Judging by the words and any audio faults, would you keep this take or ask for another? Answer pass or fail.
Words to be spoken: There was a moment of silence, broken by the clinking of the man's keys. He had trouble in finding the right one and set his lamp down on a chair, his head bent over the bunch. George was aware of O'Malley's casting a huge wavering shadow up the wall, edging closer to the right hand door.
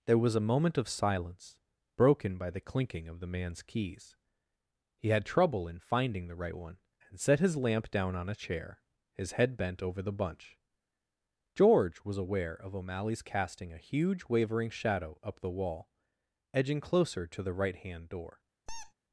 fail